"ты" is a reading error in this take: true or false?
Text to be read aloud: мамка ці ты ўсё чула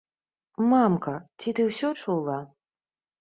false